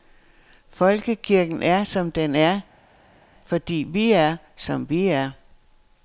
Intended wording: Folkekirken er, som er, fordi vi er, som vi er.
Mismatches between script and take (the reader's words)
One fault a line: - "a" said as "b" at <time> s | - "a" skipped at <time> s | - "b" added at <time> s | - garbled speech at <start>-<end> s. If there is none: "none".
- "den" added at 2.1 s